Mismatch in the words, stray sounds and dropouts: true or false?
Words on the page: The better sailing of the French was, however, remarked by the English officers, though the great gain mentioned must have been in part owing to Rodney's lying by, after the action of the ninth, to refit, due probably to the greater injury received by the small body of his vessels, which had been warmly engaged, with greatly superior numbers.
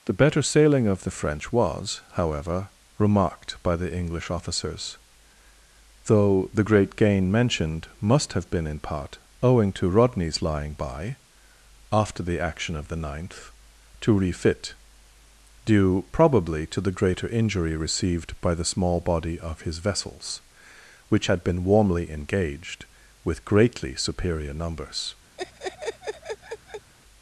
true